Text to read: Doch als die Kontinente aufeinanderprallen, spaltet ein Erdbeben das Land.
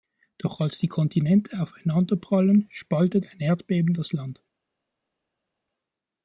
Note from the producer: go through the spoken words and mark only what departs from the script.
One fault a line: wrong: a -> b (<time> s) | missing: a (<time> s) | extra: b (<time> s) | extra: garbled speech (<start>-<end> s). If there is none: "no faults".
no faults